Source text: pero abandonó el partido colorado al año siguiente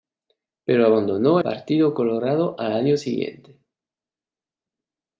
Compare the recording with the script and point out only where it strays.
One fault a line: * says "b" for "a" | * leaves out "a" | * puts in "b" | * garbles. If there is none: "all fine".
* leaves out "el"